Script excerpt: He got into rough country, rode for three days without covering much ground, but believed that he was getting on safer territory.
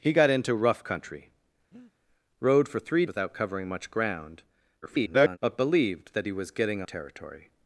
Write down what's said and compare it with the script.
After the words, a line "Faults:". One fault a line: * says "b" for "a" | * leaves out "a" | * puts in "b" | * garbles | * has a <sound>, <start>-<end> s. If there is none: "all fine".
He got into rough country, rode for three without covering much ground, [garbled] but believed that he was getting territory.
Faults:
* has a breath, 1.7-1.9 s
* leaves out "days"
* garbles
* leaves out "on safer"